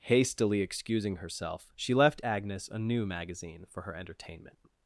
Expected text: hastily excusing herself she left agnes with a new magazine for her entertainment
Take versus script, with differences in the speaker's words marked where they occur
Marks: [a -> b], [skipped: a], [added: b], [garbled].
hastily excusing herself she left agnes [skipped: with] a new magazine for her entertainment